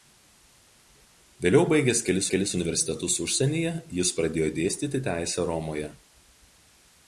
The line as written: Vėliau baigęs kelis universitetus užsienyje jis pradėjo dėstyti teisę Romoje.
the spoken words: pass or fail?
fail